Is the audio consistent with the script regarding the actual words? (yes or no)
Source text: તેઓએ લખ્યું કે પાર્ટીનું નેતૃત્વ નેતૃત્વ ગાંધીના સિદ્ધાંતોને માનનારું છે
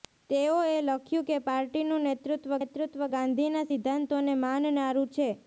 yes